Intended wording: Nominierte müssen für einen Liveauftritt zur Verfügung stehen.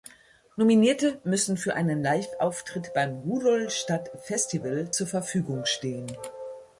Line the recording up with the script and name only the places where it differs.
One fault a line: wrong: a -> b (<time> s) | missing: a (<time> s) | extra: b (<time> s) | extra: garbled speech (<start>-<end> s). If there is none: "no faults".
extra: beim Rudolstadt Festival (2.9 s)